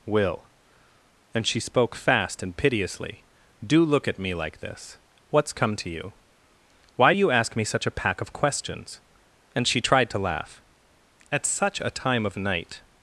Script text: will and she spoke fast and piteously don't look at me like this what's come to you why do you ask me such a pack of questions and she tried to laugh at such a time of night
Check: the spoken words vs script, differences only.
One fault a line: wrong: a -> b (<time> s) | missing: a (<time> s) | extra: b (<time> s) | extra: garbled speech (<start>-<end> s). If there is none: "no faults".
wrong: don't -> do (3.6 s)